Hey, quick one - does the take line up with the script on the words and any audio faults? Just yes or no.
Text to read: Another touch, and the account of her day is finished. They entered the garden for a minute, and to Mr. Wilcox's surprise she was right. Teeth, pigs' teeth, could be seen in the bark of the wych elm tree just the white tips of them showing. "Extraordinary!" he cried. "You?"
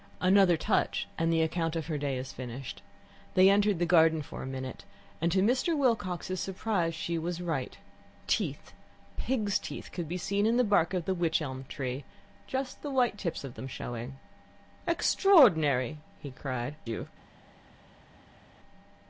yes